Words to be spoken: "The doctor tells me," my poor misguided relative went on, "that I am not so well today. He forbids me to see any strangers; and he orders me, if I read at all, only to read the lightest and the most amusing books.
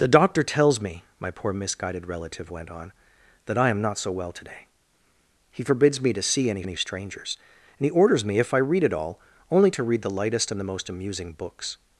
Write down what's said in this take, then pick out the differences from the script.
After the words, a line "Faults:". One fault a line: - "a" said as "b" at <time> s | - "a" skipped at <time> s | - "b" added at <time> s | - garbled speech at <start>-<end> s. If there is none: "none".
"The doctor tells me," my poor misguided relative went on, "that I am not so well today. He forbids me to see any any strangers; and he orders me, if I read at all, only to read the lightest and the most amusing books.
Faults:
- "any" added at 6.6 s